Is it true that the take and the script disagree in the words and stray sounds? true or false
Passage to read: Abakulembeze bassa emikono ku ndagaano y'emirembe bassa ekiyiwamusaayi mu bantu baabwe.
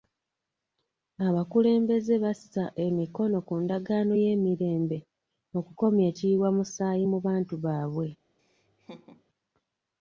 true